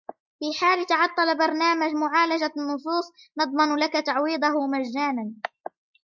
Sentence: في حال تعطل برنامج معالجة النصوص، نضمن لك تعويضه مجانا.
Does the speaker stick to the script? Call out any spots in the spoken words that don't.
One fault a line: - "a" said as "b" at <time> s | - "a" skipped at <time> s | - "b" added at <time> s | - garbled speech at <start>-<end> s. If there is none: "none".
none